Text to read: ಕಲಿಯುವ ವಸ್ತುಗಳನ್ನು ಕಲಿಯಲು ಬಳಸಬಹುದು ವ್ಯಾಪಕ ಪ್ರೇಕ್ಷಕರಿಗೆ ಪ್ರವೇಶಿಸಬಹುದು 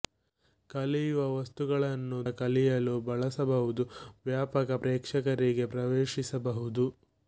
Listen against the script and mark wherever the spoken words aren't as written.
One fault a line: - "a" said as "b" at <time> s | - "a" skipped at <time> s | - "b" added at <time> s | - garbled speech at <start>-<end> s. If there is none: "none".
none